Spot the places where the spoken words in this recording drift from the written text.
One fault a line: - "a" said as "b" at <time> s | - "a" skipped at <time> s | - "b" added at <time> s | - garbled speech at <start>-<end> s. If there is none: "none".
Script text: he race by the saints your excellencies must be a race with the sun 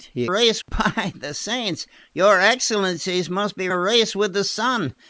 none